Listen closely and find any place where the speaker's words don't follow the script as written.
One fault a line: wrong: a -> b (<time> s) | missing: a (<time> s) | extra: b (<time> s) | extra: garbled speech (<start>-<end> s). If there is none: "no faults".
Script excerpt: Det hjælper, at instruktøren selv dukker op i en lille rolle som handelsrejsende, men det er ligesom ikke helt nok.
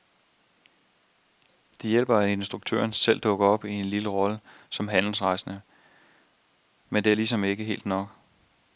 no faults